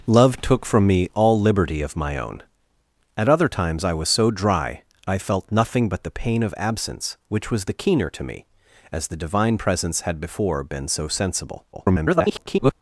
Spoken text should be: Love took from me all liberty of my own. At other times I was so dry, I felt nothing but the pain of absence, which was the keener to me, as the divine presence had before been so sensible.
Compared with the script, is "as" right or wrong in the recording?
right